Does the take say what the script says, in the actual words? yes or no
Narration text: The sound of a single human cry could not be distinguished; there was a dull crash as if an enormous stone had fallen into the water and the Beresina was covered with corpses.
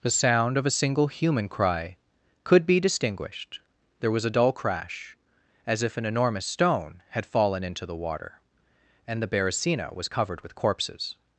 no